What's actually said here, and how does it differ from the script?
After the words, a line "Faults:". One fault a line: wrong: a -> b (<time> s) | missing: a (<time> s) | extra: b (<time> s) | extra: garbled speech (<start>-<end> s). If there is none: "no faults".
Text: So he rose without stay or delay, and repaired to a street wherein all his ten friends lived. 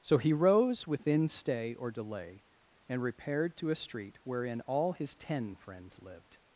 So he rose within stay or delay, and repaired to a street wherein all his ten friends lived.
Faults:
wrong: without -> within (0.9 s)